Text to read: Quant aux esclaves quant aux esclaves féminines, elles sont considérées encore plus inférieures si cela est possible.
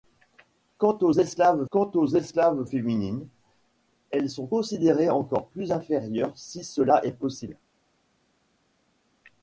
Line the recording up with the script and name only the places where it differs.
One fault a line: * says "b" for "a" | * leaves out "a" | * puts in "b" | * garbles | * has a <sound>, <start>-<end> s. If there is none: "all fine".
all fine